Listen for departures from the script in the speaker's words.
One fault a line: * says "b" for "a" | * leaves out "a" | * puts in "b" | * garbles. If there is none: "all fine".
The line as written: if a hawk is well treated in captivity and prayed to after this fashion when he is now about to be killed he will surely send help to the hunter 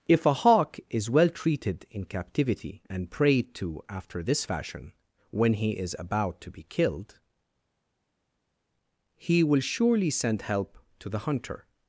* leaves out "now"